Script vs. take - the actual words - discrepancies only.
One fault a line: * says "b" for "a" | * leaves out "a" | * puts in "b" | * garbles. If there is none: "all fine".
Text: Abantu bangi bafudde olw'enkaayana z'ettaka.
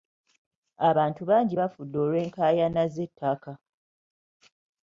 all fine